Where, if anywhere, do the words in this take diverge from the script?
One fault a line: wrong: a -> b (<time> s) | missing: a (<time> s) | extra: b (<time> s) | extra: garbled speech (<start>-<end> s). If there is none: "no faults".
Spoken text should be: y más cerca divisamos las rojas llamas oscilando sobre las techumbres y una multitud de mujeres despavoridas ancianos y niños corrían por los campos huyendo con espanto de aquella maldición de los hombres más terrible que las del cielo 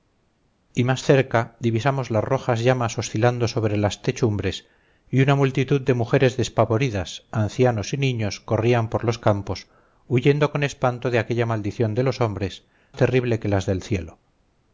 missing: más (12.7 s)